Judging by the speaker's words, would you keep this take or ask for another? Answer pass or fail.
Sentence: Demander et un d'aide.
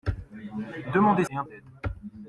pass